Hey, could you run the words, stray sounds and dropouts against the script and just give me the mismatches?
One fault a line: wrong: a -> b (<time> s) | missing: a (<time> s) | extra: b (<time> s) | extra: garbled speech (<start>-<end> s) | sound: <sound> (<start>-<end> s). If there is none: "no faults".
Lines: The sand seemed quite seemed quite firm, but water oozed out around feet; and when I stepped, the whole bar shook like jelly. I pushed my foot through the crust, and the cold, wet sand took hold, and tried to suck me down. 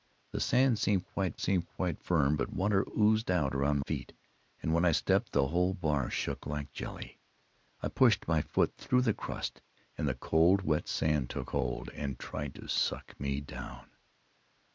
no faults